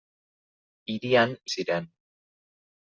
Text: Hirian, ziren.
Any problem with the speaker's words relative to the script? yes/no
no